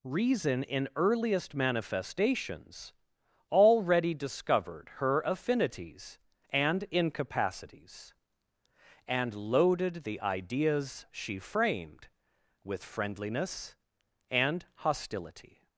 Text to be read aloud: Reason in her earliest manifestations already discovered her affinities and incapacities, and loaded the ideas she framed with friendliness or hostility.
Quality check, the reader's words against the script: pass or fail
fail